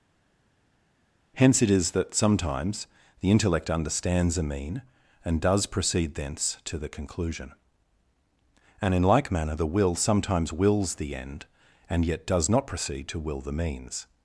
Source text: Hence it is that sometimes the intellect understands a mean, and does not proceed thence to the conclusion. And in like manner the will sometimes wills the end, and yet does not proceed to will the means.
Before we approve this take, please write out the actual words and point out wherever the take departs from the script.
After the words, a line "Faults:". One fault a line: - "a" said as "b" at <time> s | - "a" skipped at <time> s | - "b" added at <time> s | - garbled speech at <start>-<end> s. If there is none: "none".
Hence it is that sometimes the intellect understands a mean, and does proceed thence to the conclusion. And in like manner the will sometimes wills the end, and yet does not proceed to will the means.
Faults:
- "not" skipped at 5.7 s